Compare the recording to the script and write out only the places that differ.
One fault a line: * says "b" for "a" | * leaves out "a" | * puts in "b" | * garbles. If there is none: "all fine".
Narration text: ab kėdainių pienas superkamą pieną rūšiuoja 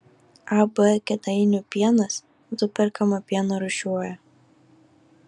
all fine